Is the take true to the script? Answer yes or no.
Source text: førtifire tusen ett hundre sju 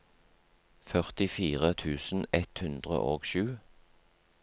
no